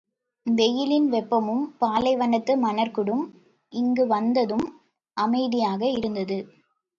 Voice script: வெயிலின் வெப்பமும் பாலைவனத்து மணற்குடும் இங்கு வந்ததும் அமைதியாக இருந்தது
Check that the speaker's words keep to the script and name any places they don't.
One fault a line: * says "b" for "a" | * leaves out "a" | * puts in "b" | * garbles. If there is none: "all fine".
all fine